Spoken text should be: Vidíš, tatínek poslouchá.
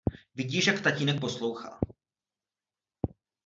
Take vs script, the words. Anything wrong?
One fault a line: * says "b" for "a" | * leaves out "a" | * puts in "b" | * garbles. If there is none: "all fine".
* puts in "jak"